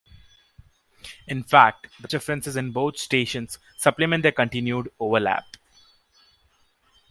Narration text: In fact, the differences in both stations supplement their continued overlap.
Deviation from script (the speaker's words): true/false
false